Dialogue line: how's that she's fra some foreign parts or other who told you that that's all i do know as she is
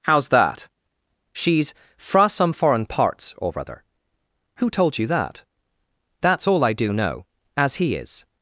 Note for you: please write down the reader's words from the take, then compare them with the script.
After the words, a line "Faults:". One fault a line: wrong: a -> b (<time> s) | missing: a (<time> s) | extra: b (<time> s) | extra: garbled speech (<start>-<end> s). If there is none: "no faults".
how's that she's fra some foreign parts or other who told you that that's all i do know as he is
Faults:
wrong: she -> he (7.8 s)